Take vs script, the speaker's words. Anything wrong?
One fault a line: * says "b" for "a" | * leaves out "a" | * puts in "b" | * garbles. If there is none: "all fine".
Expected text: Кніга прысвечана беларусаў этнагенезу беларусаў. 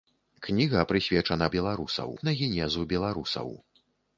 all fine